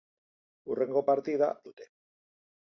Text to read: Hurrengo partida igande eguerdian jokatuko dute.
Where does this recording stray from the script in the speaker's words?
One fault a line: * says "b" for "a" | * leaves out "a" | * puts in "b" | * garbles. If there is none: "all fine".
* leaves out "igande eguerdian jokatuko"